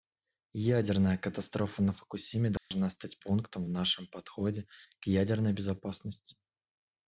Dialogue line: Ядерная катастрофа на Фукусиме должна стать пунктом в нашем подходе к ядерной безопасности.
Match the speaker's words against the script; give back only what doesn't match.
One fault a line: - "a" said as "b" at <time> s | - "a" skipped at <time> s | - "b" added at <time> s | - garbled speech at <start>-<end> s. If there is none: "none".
none